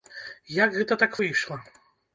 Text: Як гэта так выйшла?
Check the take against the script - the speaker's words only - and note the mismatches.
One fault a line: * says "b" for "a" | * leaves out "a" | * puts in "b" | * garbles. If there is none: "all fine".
all fine